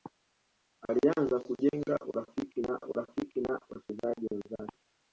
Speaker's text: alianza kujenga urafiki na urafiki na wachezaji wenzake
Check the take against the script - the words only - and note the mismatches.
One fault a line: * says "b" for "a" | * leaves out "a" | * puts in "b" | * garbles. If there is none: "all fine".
all fine